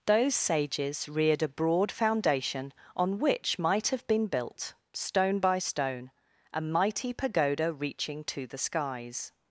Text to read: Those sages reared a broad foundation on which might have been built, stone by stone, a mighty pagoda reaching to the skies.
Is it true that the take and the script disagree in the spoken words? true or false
false